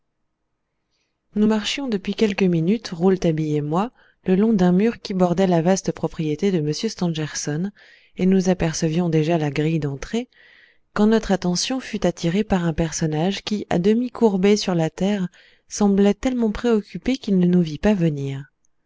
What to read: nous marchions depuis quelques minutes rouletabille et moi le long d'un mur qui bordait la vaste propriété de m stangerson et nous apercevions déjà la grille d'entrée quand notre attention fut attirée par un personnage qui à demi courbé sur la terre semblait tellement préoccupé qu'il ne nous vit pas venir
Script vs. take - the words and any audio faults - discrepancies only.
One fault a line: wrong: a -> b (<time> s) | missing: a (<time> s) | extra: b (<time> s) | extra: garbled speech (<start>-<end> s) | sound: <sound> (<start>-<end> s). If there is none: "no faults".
no faults